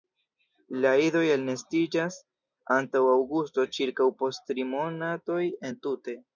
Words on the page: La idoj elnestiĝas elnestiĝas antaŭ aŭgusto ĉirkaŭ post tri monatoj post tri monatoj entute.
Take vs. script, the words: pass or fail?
fail